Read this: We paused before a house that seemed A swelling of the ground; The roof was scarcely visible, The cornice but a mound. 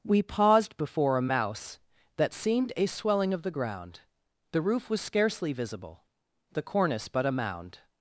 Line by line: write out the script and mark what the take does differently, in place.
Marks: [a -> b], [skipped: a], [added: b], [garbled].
We paused before a [house -> mouse] that seemed A swelling of the ground; The roof was scarcely visible, The cornice but a mound.